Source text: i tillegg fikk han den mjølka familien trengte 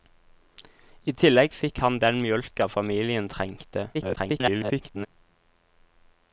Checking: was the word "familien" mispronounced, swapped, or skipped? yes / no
no